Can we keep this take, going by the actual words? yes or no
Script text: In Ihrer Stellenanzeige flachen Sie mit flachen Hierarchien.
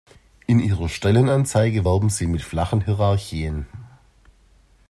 no